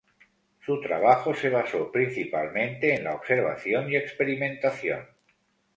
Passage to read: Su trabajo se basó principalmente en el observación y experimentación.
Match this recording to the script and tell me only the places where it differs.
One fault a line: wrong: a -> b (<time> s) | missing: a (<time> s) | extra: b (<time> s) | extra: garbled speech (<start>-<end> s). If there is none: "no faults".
wrong: el -> la (3.0 s)